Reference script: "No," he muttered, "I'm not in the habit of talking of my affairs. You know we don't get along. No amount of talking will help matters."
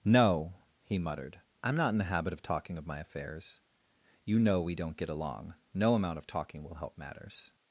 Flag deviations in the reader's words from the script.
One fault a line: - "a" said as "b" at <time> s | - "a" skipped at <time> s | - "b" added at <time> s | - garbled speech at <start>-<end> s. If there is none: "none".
none